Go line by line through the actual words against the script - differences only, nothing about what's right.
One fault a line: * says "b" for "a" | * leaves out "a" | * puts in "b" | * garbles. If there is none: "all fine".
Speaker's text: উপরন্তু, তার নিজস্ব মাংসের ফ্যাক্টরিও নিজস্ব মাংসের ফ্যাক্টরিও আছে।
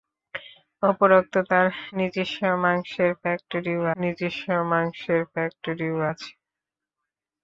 all fine